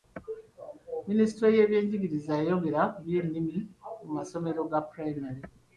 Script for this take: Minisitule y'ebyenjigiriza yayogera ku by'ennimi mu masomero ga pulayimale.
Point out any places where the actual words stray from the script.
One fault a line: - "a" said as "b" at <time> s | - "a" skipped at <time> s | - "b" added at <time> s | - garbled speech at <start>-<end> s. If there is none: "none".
none